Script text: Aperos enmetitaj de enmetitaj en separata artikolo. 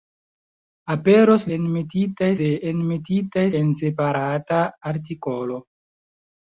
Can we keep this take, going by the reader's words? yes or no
yes